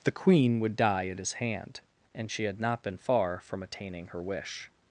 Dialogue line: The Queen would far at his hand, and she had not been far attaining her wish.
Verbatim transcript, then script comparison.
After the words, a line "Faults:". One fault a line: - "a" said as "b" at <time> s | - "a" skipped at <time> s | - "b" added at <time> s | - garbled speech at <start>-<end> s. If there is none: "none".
The Queen would die at his hand, and she had not been far from attaining her wish.
Faults:
- "far" said as "die" at 0.8 s
- "from" added at 3.5 s